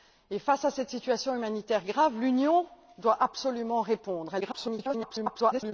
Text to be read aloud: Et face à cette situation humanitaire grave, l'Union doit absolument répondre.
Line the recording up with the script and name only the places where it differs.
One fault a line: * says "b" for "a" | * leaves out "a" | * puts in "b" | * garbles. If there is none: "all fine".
* garbles